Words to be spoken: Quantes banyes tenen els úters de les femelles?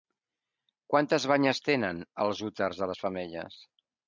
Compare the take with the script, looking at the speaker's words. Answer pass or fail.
pass